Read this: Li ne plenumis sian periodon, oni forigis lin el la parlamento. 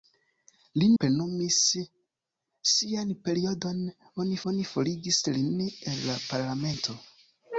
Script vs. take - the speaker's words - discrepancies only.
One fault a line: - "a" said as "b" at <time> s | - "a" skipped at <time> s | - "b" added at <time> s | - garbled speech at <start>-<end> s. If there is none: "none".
- "ne" skipped at 0.8 s
- "oni" added at 4.5 s